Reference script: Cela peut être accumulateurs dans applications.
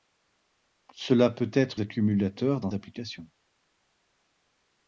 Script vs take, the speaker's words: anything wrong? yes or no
no